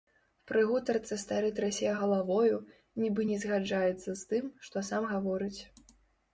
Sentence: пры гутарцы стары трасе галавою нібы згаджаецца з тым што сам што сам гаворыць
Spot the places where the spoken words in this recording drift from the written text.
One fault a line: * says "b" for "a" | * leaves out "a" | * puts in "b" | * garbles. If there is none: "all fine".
* puts in "не"
* leaves out "што сам"